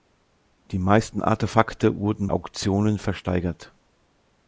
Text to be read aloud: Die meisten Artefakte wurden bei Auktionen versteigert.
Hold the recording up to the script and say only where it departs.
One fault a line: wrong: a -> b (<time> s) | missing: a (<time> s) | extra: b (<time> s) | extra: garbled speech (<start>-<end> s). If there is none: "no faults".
missing: bei (2.3 s)